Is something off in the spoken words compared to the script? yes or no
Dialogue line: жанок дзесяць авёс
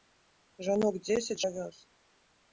no